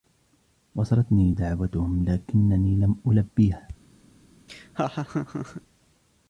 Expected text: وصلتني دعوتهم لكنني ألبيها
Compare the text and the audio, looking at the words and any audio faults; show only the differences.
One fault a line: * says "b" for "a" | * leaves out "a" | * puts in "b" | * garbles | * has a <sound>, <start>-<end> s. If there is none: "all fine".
* puts in "لم"
* has a laugh, 4.5-5.6 s